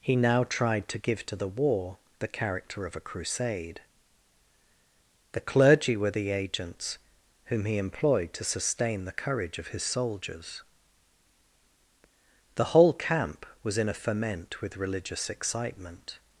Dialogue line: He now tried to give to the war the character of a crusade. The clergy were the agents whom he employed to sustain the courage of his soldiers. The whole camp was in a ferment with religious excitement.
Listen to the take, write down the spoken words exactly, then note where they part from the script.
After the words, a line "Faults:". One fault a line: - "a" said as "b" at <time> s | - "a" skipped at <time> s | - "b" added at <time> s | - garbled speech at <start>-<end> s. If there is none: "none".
He now tried to give to the war the character of a crusade. The clergy were the agents whom he employed to sustain the courage of his soldiers. The whole camp was in a ferment with religious excitement.
Faults:
none